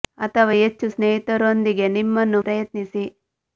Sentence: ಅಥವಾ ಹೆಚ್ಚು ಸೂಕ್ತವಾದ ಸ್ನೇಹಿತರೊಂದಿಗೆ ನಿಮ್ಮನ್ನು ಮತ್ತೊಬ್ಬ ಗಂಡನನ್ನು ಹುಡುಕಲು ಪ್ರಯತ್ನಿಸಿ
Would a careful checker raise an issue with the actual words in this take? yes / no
yes